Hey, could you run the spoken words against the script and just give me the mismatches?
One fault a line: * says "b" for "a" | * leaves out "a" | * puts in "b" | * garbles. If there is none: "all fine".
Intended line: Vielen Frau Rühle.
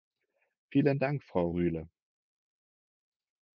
* puts in "Dank"